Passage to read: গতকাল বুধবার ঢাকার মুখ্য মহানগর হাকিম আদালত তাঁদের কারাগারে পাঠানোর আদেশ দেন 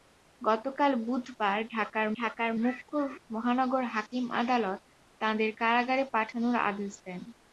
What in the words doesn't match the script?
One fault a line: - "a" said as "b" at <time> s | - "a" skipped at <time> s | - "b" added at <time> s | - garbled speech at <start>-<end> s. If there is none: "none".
- "ঢাকার" added at 2.2 s